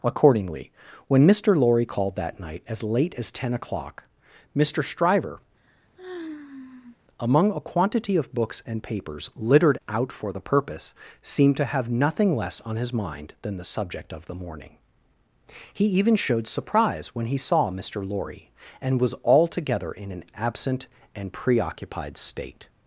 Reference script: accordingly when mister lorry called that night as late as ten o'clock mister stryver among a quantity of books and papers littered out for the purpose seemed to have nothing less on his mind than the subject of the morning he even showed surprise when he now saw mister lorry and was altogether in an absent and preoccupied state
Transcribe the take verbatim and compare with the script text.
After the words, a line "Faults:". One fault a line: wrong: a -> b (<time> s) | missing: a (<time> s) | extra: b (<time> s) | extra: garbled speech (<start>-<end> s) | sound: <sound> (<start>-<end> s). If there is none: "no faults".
accordingly when mister lorry called that night as late as ten o'clock mister stryver among a quantity of books and papers littered out for the purpose seemed to have nothing less on his mind than the subject of the morning he even showed surprise when he saw mister lorry and was altogether in an absent and preoccupied state
Faults:
sound: sigh (5.6-7.0 s)
missing: now (17.4 s)